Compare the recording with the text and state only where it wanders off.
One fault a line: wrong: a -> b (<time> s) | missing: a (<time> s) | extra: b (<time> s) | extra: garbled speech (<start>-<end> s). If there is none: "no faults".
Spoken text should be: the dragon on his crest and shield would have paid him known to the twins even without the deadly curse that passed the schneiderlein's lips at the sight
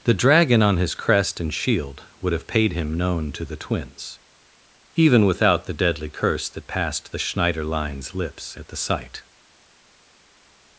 no faults